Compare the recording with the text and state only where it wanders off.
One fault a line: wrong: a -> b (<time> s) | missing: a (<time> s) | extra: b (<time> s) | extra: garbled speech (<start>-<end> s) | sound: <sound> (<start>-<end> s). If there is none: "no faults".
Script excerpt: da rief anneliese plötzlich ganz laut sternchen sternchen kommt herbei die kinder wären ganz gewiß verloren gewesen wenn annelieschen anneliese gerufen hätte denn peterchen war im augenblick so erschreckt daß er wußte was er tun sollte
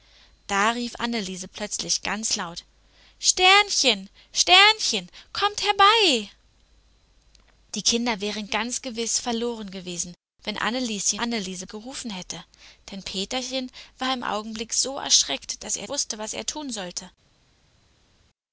no faults